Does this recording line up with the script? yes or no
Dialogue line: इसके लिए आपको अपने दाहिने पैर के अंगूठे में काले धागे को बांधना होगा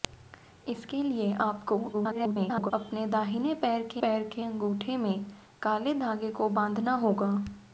no